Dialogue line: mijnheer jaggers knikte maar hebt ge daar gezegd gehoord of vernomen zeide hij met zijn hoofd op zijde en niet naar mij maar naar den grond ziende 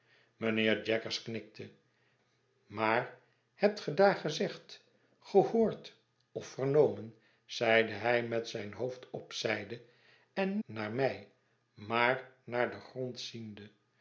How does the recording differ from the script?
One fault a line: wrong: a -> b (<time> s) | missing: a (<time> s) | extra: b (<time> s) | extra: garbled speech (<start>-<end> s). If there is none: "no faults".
missing: niet (10.6 s)